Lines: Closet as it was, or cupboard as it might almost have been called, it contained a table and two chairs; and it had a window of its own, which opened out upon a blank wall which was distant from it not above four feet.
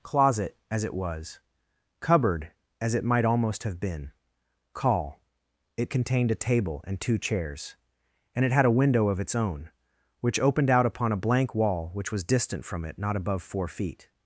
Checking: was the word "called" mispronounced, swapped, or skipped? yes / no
yes